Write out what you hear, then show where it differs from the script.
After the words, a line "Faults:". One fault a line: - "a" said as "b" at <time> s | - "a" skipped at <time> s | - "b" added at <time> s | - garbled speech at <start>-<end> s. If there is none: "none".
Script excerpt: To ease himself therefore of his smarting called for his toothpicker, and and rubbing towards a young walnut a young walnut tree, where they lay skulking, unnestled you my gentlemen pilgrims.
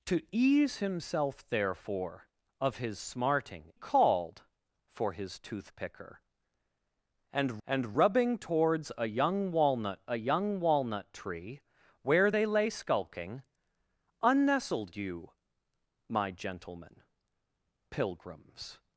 To ease himself therefore of his smarting called for his toothpicker, and and rubbing towards a young walnut a young walnut tree, where they lay skulking, unnestled you my gentlemen pilgrims.
Faults:
none